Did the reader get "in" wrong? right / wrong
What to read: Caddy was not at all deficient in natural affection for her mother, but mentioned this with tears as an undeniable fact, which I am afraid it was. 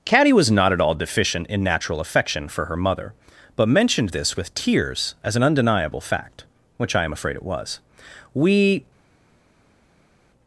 right